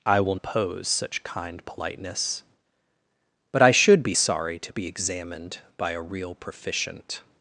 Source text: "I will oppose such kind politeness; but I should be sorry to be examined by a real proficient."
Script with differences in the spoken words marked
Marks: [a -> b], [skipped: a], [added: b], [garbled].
"I will oppose such kind politeness; but I should be sorry to be examined by a real proficient."